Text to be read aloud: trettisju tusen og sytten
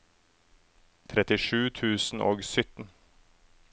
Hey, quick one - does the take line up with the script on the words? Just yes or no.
yes